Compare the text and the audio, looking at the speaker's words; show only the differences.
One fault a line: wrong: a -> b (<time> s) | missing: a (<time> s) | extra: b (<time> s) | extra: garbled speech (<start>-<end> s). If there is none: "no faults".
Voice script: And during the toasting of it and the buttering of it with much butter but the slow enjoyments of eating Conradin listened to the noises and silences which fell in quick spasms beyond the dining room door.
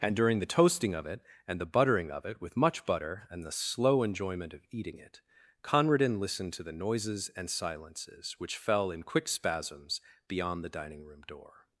wrong: but -> and (3.3 s)
wrong: enjoyments -> enjoyment (4.0 s)
extra: it (5.0 s)